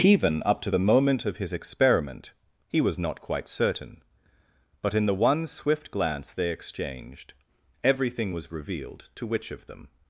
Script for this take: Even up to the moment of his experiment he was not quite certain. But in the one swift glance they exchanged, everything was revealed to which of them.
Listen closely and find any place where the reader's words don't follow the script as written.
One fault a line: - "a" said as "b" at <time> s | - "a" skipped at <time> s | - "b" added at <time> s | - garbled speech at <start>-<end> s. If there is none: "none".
none